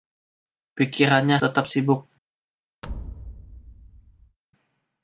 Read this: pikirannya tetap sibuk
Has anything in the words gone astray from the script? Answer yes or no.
no